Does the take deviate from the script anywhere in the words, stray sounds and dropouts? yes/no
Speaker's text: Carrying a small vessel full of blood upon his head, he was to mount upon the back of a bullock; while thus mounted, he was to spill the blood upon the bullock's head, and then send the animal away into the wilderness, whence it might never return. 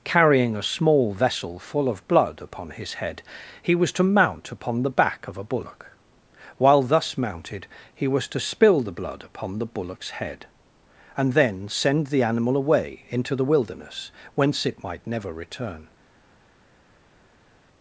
no